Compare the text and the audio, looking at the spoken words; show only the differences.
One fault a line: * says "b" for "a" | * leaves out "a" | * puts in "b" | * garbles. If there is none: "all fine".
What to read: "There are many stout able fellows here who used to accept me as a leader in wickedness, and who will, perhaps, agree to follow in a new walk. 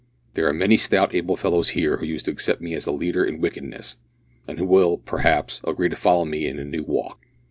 * puts in "me"